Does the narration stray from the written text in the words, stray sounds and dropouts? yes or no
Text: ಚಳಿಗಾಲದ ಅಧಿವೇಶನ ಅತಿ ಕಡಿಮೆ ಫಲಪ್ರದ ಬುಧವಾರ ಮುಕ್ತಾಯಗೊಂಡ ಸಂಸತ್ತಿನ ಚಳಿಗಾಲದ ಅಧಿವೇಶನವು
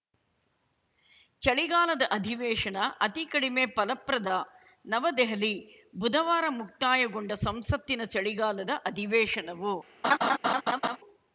yes